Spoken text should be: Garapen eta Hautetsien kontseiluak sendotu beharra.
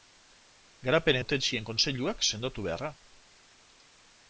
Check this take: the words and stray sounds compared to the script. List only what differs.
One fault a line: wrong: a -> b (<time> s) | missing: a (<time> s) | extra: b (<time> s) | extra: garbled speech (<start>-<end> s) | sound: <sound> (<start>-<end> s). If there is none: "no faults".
missing: eta (1.2 s)